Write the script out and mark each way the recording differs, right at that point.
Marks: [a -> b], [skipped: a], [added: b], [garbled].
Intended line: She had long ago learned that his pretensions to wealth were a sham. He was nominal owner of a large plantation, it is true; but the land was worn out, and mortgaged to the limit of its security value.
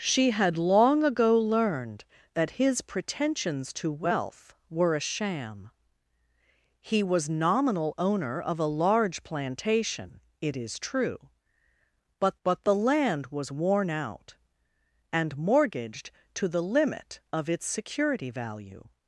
She had long ago learned that his pretensions to wealth were a sham. He was nominal owner of a large plantation, it is true; but [added: but] the land was worn out, and mortgaged to the limit of its security value.